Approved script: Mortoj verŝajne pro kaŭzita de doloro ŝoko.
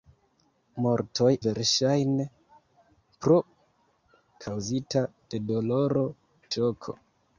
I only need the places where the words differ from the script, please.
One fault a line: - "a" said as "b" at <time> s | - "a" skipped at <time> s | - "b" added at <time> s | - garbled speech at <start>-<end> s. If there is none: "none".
none